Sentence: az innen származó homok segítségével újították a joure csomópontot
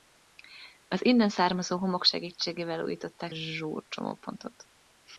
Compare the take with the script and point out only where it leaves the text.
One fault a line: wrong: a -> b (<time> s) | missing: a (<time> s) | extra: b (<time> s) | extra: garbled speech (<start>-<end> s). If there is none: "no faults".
no faults